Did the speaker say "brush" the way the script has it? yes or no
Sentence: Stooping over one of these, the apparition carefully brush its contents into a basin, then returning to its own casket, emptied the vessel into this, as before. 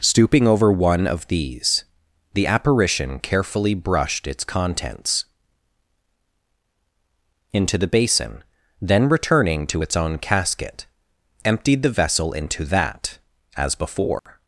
no